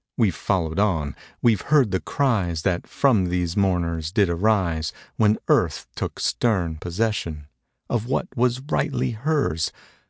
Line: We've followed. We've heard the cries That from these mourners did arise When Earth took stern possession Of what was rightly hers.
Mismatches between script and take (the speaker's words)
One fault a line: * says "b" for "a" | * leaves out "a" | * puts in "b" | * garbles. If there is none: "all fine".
* puts in "on"